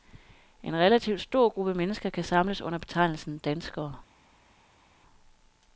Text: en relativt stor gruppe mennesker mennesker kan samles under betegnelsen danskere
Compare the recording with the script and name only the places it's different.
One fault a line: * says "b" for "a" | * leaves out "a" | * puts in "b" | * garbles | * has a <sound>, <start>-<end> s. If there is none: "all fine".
* leaves out "mennesker"